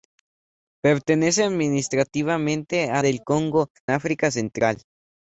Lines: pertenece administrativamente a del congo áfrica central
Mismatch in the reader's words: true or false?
false